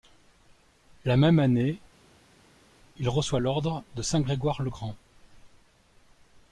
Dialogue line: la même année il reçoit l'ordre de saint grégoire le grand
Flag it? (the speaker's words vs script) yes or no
no